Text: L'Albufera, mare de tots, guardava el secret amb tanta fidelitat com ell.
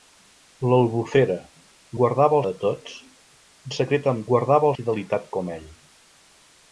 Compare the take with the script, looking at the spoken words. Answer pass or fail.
fail